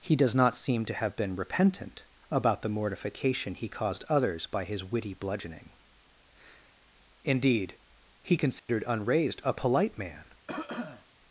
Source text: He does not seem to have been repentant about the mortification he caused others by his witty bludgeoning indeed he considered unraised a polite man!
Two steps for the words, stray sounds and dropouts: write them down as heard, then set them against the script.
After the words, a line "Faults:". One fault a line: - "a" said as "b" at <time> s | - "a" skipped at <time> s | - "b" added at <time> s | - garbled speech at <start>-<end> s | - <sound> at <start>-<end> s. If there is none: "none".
He does not seem to have been repentant about the mortification he caused others by his witty bludgeoning indeed he considered unraised a polite man!
Faults:
- dropout at 8.6-8.7 s
- cough at 10.5-11.1 s